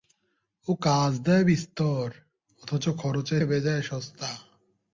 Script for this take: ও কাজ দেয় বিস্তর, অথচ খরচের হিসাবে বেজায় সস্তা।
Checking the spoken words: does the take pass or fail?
fail